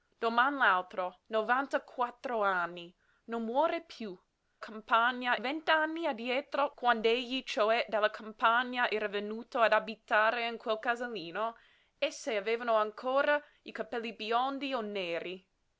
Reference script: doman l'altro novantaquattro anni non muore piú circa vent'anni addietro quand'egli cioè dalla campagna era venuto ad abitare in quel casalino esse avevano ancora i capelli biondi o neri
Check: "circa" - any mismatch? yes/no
yes